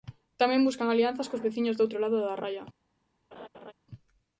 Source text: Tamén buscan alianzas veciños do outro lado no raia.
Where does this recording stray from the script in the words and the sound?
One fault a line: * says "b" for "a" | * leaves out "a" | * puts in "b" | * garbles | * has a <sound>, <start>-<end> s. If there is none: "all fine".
* puts in "cos"
* says "da" for "no"
* has a laugh, 3.3-3.7 s